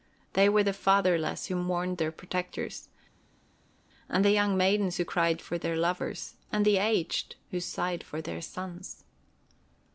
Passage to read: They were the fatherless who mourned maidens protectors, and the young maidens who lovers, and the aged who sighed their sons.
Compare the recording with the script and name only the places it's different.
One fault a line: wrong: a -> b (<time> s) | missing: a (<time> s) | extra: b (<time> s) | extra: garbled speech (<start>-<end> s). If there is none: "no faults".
wrong: maidens -> their (2.0 s)
extra: cried for their (5.0 s)
extra: for (8.0 s)